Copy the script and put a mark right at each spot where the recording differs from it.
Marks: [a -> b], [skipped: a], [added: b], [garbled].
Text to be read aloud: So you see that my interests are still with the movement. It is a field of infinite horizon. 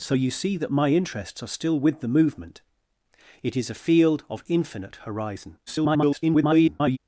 So you see that my interests are still with the movement. It is a field of infinite horizon. [garbled]